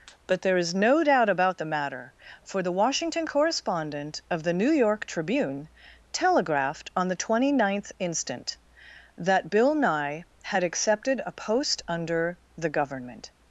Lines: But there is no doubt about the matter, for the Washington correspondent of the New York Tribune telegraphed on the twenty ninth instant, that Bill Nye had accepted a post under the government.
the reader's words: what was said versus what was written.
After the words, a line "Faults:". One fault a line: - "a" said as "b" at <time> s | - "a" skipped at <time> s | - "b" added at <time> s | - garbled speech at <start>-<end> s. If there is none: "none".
But there is no doubt about the matter, for the Washington correspondent of the New York Tribune telegraphed on the twenty ninth instant, that Bill Nye had accepted a post under the government.
Faults:
none